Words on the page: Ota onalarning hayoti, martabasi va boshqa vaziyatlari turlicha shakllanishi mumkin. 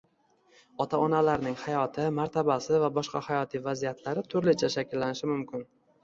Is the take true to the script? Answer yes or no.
no